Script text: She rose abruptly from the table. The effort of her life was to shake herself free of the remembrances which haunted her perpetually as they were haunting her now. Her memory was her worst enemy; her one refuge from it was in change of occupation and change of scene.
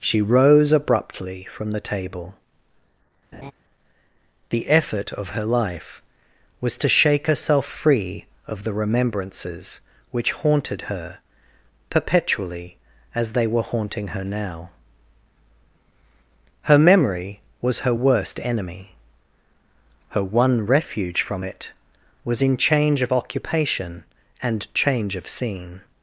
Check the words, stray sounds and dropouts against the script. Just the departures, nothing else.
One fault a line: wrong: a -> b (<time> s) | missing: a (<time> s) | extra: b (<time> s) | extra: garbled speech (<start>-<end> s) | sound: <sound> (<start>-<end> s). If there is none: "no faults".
sound: laugh (3.3-3.5 s)